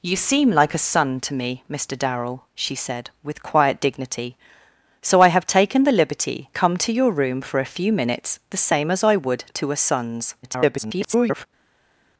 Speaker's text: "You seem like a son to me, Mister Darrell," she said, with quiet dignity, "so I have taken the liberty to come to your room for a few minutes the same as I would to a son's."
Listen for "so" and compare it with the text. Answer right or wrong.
right